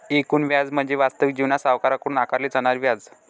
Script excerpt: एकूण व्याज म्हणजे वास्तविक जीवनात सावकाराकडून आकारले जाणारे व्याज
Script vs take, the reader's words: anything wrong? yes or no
no